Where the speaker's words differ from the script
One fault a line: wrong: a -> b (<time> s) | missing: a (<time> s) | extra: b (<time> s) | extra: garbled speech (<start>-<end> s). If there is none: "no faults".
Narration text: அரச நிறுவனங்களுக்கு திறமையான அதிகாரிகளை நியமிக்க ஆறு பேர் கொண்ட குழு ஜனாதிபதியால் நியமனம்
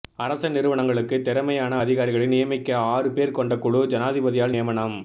no faults